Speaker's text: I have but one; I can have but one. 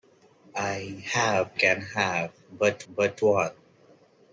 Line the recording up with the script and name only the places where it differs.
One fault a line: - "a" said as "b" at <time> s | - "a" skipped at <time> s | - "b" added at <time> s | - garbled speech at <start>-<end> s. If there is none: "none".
- "but one I" skipped at 1.5 s
- "but" added at 2.9 s